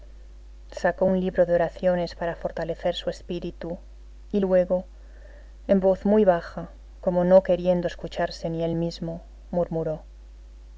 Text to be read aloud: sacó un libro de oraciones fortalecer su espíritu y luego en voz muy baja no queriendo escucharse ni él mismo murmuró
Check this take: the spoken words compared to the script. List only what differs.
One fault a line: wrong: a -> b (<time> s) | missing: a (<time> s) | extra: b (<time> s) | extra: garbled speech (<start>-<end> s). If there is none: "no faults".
extra: para (2.2 s)
extra: como (7.0 s)